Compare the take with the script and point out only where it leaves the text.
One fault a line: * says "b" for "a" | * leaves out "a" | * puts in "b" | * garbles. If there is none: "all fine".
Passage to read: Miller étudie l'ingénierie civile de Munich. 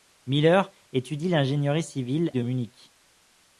all fine